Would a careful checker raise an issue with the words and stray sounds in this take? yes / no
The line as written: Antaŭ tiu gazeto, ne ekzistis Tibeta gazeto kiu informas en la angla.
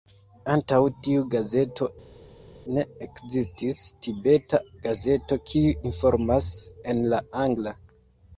no